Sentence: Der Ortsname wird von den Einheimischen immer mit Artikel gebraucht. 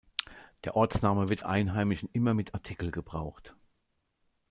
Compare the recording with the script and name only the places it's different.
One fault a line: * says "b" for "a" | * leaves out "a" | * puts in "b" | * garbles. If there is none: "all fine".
* leaves out "von den"